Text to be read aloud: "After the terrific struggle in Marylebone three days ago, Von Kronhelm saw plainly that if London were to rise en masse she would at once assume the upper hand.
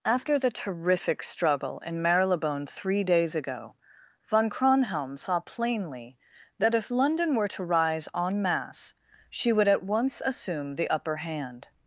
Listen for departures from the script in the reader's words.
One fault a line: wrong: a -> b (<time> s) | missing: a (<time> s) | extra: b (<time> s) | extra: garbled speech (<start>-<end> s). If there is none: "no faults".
no faults